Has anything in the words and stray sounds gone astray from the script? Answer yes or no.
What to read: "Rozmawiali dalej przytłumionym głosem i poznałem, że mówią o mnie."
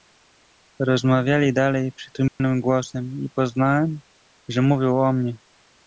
yes